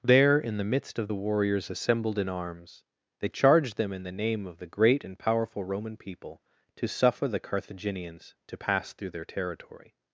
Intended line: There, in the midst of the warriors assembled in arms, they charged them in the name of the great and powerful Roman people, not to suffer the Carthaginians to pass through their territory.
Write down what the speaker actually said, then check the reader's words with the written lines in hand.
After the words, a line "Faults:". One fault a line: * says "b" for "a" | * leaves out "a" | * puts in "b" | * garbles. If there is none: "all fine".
There, in the midst of the warriors assembled in arms, they charged them in the name of the great and powerful Roman people, to suffer the Carthaginians to pass through their territory.
Faults:
* leaves out "not"